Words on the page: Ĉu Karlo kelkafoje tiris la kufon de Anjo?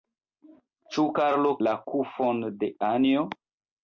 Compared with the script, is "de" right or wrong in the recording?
right